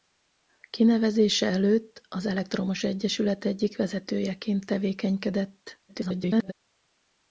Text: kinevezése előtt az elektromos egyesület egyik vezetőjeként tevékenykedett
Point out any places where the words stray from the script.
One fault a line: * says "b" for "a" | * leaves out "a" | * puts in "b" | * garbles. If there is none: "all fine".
* garbles